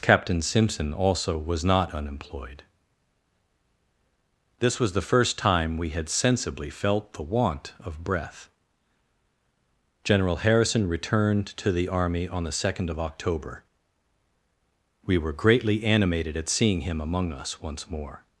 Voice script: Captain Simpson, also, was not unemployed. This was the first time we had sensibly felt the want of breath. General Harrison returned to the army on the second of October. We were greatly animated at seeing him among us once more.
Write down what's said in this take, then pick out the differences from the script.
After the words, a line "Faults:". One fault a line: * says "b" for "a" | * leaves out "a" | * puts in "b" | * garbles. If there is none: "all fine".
Captain Simpson, also, was not unemployed. This was the first time we had sensibly felt the want of breath. General Harrison returned to the army on the second of October. We were greatly animated at seeing him among us once more.
Faults:
all fine